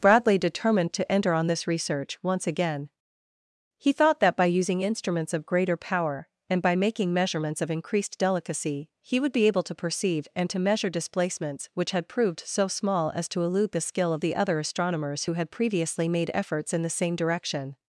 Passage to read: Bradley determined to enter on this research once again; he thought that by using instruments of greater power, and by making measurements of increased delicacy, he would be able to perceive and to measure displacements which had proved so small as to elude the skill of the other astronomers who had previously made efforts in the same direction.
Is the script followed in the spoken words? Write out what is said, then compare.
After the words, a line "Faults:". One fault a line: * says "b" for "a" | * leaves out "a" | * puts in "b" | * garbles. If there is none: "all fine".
Bradley determined to enter on this research once again; he thought that by using instruments of greater power, and by making measurements of increased delicacy, he would be able to perceive and to measure displacements which had proved so small as to elude the skill of the other astronomers who had previously made efforts in the same direction.
Faults:
all fine